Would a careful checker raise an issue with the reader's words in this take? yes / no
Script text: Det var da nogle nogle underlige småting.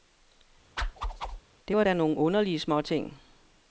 yes